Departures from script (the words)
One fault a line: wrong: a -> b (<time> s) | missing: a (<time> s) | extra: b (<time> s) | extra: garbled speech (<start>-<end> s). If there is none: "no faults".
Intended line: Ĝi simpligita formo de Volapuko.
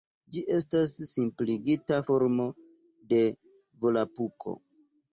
extra: estas (0.5 s)